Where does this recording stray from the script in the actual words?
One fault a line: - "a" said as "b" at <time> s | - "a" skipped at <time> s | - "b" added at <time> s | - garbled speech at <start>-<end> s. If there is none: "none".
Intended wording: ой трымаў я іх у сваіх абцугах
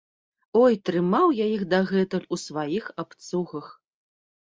- "дагэтуль" added at 1.7 s